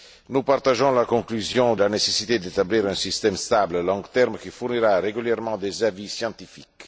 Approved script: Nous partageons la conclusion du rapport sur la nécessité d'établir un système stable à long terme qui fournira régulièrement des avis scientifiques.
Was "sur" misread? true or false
true